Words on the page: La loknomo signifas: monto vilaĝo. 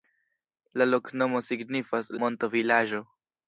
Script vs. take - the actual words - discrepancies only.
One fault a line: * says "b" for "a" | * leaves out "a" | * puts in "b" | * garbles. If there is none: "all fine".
all fine